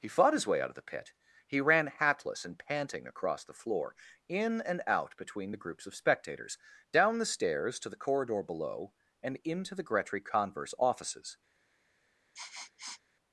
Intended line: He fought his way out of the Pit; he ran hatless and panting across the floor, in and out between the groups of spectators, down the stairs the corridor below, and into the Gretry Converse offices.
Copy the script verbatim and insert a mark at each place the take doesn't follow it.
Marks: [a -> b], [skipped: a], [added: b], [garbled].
He fought his way out of the Pit; he ran hatless and panting across the floor, in and out between the groups of spectators, down the stairs [added: to] the corridor below, and into the Gretry Converse offices.